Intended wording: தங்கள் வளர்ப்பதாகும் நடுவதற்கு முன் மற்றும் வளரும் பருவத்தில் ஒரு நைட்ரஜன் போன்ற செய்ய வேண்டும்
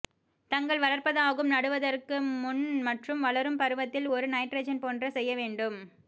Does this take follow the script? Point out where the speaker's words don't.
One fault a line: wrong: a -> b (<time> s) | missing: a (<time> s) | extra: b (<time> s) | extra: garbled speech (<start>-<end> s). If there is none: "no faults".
no faults